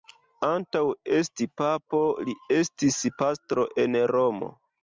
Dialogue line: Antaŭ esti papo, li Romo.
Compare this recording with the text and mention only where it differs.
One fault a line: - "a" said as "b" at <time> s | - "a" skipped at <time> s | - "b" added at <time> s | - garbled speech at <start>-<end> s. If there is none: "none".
- "estis pastro en" added at 2.6 s